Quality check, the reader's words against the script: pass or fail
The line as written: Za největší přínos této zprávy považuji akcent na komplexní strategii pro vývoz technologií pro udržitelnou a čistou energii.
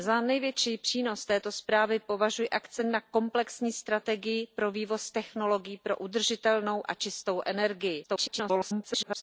fail